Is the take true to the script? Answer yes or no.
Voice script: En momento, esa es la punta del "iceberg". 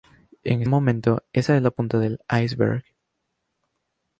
yes